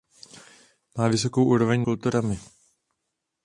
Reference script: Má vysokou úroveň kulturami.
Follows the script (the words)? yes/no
yes